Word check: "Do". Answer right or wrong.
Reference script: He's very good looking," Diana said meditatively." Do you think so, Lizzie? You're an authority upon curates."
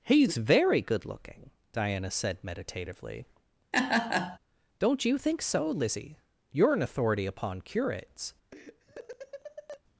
wrong